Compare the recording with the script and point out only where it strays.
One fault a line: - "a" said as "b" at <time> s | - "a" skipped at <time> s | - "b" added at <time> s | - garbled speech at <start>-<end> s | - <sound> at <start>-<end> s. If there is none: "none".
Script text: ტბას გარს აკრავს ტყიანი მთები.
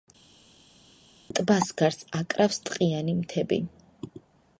none